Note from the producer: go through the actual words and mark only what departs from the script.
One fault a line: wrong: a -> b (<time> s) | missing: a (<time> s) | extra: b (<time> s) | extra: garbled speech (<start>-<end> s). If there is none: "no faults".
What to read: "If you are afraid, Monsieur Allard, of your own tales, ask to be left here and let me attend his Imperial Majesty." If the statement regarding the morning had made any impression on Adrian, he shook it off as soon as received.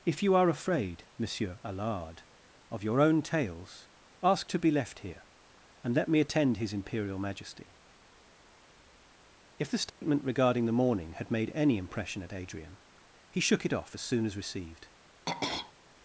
wrong: on -> at (12.2 s)